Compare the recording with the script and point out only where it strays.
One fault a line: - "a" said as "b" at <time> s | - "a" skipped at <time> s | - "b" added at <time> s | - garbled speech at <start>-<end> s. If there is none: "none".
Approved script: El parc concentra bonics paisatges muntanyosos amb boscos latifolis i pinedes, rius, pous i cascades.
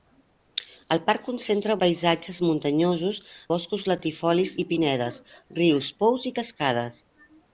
- "bonics" skipped at 1.8 s
- "amb" skipped at 3.2 s